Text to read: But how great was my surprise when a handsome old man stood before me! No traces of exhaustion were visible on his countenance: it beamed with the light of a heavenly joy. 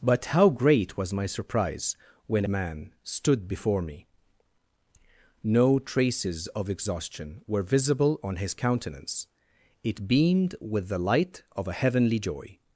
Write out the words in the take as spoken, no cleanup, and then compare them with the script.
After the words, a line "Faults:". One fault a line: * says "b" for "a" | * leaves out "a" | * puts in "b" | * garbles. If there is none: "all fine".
But how great was my surprise when man stood before me! No traces of exhaustion were visible on his countenance: it beamed with the light of a heavenly joy.
Faults:
* leaves out "a handsome old"